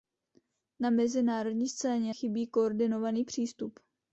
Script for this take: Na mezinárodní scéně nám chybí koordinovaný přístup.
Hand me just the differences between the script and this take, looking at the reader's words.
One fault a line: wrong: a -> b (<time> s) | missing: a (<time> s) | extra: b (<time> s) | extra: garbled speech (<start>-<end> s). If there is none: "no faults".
missing: nám (2.1 s)